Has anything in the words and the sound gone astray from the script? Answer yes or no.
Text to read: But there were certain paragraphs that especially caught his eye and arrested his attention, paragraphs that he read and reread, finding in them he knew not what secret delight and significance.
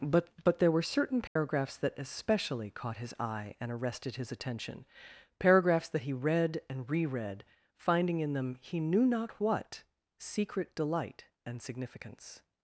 yes